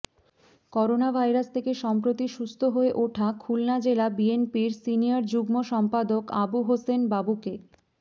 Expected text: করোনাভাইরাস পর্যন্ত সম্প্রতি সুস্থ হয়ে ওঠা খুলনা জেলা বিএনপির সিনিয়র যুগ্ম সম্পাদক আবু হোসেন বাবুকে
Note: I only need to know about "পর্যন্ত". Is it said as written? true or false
false